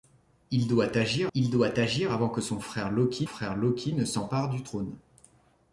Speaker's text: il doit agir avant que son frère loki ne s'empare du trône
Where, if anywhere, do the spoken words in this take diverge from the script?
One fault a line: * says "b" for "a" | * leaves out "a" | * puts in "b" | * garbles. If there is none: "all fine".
* puts in "il doit agir"
* puts in "frère loki"